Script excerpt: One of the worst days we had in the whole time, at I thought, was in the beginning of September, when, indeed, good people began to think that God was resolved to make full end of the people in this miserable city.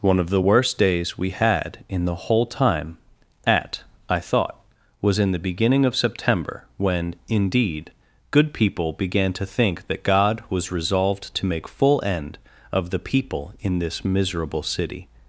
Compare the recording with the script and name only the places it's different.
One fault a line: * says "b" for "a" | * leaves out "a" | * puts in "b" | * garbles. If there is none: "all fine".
all fine